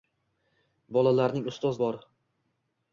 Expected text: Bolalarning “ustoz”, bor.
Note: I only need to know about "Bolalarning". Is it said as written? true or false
true